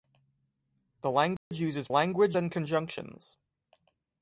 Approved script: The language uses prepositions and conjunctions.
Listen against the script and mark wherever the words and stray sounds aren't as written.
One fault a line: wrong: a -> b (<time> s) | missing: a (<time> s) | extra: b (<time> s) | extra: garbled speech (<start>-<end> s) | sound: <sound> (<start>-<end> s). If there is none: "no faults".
sound: dropout (1.4-1.5 s)
wrong: prepositions -> language (1.9 s)